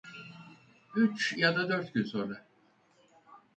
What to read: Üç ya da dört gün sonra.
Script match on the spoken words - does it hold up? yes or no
yes